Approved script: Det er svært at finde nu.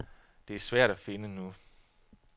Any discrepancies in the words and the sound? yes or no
no